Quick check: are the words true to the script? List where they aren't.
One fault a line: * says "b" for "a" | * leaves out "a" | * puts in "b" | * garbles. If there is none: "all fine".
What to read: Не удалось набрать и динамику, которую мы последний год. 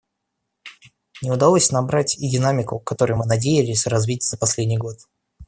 * puts in "надеялись развить за"